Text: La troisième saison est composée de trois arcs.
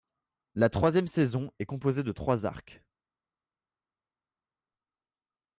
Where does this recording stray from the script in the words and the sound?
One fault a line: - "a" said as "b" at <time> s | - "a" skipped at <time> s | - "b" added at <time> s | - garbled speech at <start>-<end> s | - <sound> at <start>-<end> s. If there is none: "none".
none